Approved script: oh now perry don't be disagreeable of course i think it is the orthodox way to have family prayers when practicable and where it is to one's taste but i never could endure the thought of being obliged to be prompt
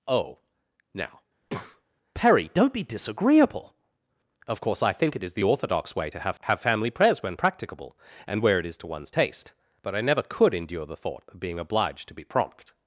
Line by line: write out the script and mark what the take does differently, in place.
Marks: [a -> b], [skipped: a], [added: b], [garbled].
oh now perry don't be disagreeable of course i think it is the orthodox way to have [added: have] family prayers when practicable and where it is to one's taste but i never could endure the thought of being obliged to be prompt